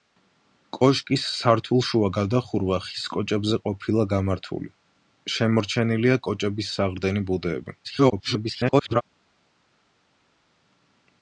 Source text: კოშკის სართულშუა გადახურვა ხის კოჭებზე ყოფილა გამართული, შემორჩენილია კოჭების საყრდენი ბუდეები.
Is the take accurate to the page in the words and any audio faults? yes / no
no